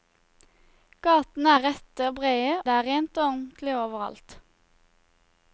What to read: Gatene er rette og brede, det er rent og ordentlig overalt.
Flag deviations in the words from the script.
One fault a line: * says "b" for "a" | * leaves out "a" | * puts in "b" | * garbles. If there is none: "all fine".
all fine